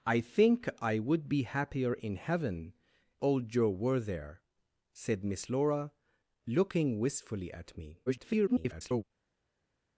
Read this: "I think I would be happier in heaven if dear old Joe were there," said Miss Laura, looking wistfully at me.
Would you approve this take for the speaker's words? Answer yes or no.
no